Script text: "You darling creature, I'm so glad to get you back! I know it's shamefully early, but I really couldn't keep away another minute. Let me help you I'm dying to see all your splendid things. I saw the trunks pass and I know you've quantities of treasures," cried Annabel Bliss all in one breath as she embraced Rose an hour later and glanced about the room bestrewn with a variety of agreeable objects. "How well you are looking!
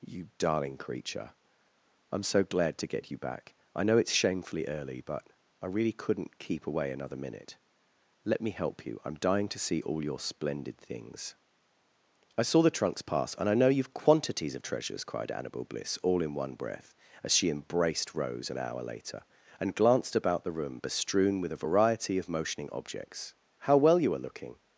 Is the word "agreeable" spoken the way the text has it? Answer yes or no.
no